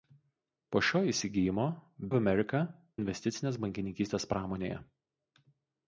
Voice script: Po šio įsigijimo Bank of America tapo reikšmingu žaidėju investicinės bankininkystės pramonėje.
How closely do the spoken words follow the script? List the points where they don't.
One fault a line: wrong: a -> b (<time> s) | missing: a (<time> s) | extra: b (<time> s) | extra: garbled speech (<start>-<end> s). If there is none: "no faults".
missing: Bank (1.6 s)
missing: tapo reikšmingu žaidėju (2.6 s)